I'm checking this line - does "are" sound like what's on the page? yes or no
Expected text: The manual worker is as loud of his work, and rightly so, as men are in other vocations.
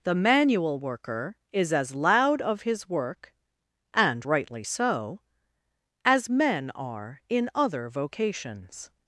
yes